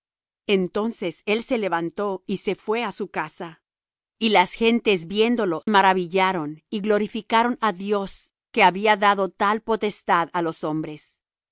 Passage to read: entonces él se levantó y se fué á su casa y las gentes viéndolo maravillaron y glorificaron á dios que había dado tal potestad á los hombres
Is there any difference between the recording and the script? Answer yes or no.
no